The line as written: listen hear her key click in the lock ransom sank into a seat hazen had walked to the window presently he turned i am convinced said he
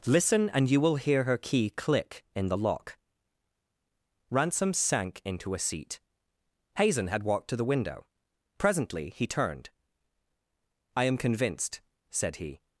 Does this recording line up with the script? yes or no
no